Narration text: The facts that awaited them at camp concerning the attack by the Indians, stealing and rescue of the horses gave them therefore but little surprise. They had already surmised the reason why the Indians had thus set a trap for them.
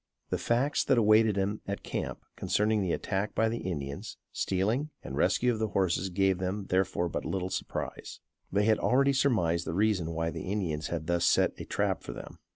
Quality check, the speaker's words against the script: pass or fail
pass